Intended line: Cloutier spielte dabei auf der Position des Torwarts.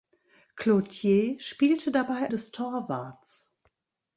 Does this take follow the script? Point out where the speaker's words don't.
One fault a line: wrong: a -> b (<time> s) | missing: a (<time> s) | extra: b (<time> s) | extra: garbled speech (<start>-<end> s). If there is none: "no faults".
missing: auf der Position (2.3 s)